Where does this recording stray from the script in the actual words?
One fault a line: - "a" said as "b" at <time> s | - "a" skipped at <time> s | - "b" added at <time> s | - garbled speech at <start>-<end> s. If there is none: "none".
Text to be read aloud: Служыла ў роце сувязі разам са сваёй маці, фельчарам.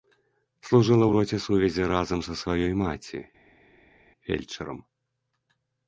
none